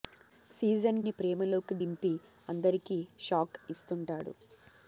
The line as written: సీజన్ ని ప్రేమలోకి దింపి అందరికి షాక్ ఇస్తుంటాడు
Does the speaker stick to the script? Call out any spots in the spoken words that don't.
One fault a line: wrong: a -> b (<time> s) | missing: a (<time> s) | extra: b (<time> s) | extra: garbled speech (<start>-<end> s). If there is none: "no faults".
no faults